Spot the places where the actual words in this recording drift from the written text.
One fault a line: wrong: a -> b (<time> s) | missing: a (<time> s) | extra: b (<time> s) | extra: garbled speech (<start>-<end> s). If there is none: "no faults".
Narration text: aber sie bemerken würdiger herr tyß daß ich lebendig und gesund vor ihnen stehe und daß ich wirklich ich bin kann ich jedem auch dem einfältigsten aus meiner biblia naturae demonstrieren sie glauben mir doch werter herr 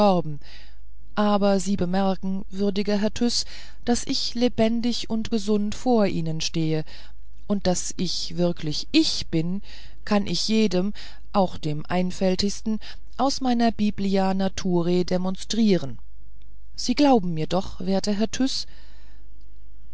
no faults